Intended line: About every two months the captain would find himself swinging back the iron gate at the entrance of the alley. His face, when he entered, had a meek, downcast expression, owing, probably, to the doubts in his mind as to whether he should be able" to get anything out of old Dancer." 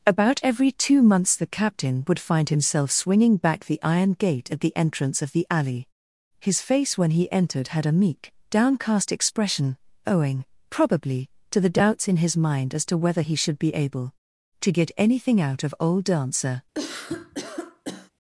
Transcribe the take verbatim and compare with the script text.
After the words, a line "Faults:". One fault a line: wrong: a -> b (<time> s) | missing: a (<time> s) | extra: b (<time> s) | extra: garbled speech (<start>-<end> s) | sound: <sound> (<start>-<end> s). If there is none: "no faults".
About every two months the captain would find himself swinging back the iron gate at the entrance of the alley. His face, when he entered, had a meek, downcast expression, owing, probably, to the doubts in his mind as to whether he should be able" to get anything out of old Dancer."
Faults:
sound: cough (16.7-18.1 s)